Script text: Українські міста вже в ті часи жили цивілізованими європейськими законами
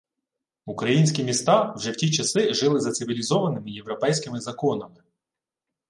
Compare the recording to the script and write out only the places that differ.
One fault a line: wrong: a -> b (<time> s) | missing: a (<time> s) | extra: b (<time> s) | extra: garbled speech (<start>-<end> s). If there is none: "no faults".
extra: за (2.8 s)